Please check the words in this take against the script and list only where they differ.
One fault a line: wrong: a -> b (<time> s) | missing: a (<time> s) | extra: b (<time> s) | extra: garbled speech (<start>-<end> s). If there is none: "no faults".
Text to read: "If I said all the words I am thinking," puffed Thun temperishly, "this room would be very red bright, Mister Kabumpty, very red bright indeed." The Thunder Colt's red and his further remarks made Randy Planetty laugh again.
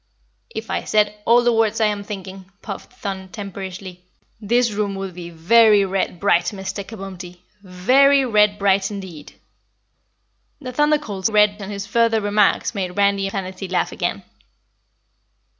no faults